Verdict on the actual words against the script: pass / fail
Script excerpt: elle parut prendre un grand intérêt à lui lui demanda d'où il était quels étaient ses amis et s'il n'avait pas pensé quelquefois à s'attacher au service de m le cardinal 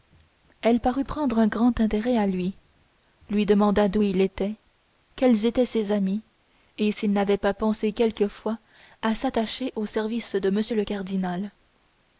pass